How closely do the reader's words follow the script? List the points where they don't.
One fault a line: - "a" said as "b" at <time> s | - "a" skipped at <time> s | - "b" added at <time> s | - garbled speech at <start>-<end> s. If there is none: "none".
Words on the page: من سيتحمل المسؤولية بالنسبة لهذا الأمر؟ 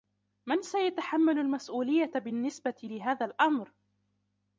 none